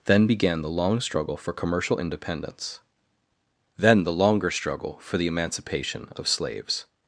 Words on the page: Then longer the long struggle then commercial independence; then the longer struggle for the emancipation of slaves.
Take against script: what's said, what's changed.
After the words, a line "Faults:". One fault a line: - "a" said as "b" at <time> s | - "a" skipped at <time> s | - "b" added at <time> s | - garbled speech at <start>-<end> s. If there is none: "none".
Then began the long struggle for commercial independence; then the longer struggle for the emancipation of slaves.
Faults:
- "longer" said as "began" at 0.3 s
- "then" said as "for" at 1.4 s